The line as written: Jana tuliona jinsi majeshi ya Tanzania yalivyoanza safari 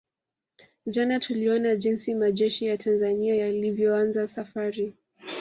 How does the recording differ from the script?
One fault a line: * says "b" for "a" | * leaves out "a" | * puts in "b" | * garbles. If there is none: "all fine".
all fine